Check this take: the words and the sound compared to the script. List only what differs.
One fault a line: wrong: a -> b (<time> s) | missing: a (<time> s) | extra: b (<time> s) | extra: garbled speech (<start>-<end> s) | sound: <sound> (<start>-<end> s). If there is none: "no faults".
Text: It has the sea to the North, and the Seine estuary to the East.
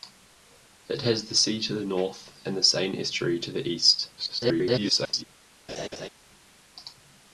extra: garbled speech (4.2-5.2 s)
sound: laugh (5.7-6.1 s)